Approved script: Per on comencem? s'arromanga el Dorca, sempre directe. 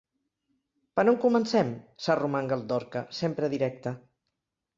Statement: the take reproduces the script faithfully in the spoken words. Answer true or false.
true